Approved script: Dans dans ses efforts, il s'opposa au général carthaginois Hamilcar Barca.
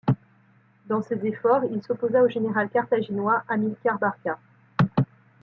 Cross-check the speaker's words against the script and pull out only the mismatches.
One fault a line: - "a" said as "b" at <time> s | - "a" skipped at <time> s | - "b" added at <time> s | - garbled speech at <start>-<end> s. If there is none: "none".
- "dans" skipped at 1.0 s